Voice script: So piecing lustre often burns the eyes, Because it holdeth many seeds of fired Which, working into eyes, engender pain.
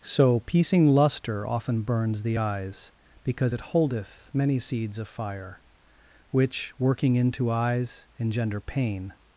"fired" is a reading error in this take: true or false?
true